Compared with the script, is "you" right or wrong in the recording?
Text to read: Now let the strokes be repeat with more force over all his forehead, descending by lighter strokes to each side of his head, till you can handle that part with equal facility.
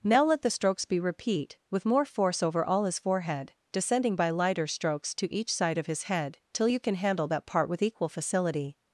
right